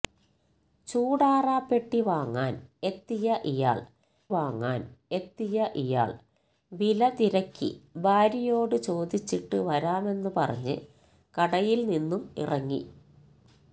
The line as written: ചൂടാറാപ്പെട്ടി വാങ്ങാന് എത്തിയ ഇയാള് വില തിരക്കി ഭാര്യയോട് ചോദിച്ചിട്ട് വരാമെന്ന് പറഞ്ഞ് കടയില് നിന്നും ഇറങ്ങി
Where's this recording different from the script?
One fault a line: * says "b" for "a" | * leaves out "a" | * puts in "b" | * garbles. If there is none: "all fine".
* puts in "വാങ്ങാന് എത്തിയ ഇയാള്"